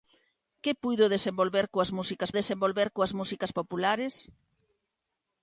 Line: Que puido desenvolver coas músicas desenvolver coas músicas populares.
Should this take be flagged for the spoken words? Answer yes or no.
no